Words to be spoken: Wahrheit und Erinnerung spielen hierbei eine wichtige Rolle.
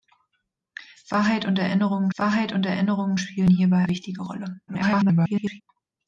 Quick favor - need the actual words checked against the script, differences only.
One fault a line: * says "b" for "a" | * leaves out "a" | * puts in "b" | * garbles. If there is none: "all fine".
* puts in "wahrheit und Erinnerung"
* leaves out "eine"
* garbles